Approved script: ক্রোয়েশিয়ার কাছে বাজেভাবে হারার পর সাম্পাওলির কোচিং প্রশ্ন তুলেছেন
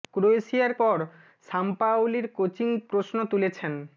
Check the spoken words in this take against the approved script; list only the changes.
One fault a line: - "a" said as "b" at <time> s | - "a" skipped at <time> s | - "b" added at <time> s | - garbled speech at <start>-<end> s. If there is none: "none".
- "কাছে বাজেভাবে হারার" skipped at 0.7 s